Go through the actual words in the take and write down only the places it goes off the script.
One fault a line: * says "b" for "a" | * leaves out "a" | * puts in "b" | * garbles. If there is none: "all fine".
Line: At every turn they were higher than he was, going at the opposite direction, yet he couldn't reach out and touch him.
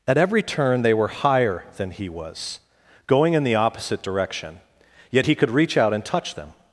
* says "in" for "at"
* says "could" for "couldn't"
* says "them" for "him"